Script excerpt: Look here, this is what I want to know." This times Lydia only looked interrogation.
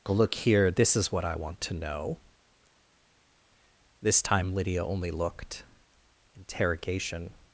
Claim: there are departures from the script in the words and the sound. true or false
true